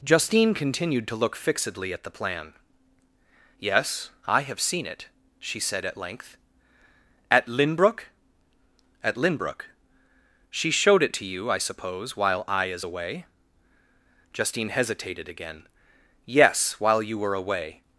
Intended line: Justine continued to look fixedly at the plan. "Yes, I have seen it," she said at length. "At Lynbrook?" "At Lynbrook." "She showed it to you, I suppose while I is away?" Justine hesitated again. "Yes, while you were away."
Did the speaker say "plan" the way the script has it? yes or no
yes